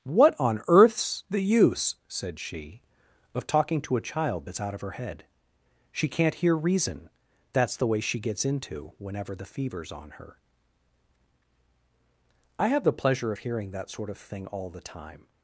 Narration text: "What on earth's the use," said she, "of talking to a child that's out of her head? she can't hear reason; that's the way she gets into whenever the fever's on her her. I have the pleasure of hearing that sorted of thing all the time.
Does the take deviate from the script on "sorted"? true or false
true